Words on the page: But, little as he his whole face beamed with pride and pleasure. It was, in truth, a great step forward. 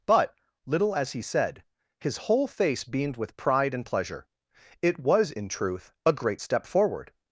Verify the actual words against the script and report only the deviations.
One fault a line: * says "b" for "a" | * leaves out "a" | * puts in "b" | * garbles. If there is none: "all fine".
* puts in "said"